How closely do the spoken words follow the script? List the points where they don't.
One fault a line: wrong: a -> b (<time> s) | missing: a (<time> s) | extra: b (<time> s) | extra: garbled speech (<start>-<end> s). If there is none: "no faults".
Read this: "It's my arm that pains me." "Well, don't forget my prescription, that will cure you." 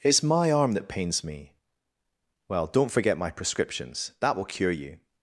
wrong: prescription -> prescriptions (3.3 s)